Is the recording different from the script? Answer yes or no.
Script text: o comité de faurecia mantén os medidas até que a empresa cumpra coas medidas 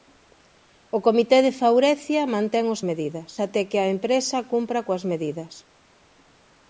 no